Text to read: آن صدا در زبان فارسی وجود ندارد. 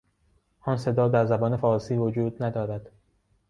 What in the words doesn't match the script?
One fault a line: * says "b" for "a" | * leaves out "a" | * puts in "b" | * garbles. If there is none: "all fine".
all fine